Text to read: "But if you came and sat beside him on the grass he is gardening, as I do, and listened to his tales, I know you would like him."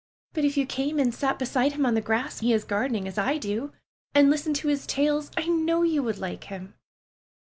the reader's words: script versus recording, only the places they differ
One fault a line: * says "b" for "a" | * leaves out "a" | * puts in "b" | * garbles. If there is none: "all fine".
all fine